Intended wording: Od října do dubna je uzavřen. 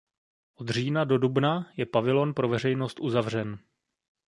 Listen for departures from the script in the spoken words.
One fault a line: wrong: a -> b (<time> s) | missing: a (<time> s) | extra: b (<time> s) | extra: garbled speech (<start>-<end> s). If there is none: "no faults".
extra: pavilon pro veřejnost (1.9 s)